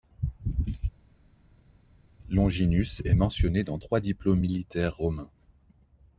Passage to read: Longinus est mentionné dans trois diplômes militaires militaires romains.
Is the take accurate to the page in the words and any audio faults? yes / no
no